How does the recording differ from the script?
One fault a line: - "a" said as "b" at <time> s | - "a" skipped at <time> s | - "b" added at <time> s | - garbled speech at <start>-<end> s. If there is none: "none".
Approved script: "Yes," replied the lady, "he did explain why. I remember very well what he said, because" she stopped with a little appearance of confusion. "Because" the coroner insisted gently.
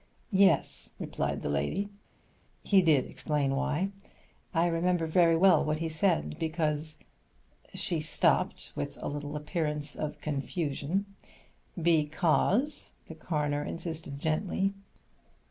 none